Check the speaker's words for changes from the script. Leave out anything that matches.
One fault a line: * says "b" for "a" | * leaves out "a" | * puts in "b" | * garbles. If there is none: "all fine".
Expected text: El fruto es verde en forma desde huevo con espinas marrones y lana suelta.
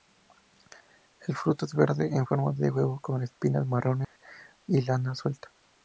* says "de" for "desde"